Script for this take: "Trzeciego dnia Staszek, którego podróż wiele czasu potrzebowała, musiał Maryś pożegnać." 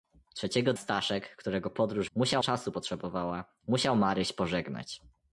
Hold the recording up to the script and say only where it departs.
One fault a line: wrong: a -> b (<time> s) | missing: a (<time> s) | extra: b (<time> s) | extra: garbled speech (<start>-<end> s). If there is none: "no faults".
missing: dnia (0.7 s)
wrong: wiele -> musiał (2.2 s)